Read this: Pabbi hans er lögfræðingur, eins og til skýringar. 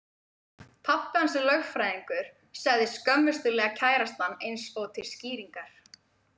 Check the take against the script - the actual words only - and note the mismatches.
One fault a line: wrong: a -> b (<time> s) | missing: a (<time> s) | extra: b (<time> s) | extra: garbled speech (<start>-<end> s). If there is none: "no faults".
extra: sagði skömmustulega kærastan (2.6 s)